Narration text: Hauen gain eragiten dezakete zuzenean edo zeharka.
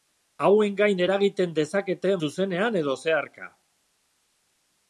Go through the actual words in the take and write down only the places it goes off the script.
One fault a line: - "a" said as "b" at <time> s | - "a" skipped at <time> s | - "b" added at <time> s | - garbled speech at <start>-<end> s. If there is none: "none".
none